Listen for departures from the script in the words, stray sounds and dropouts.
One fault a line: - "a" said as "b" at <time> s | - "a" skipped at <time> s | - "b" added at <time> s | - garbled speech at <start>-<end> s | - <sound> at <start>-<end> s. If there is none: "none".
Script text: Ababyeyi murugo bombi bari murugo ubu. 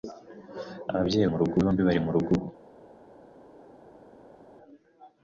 none